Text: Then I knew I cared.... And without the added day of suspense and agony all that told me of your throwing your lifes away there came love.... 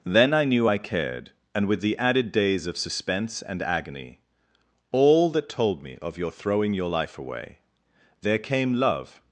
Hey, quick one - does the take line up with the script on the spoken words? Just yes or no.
no